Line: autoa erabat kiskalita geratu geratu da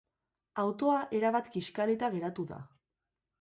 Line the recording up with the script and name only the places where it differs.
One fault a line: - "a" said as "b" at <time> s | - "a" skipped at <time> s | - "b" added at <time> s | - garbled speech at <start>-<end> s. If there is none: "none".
- "geratu" skipped at 2.5 s